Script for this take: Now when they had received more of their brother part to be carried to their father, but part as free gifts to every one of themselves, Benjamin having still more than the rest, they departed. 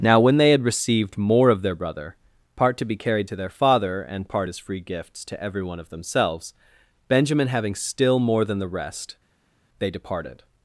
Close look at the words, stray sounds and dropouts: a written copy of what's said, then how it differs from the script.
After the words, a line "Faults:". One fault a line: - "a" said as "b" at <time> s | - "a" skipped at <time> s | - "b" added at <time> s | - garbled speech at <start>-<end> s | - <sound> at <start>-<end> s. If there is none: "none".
Now when they had received more of their brother part to be carried to their father, and part as free gifts to every one of themselves, Benjamin having still more than the rest, they departed.
Faults:
- "but" said as "and" at 4.0 s